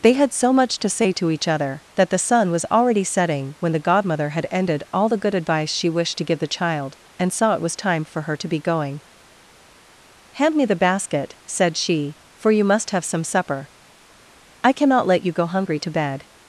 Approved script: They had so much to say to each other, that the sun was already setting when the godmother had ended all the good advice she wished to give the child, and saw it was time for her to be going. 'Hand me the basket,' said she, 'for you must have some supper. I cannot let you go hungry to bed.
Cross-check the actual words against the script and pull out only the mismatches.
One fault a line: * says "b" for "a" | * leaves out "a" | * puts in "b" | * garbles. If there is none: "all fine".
all fine